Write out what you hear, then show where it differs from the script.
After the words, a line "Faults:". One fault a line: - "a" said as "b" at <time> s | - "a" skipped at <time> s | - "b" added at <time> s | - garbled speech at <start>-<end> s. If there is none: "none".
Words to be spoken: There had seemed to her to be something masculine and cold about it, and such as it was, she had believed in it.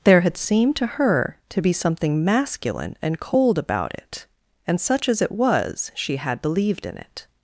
There had seemed to her to be something masculine and cold about it, and such as it was, she had believed in it.
Faults:
none